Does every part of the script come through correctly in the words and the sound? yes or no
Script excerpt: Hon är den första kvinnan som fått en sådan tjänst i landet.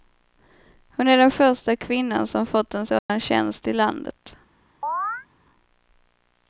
no